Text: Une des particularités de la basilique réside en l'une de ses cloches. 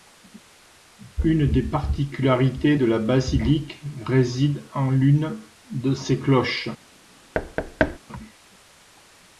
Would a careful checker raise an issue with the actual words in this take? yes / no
no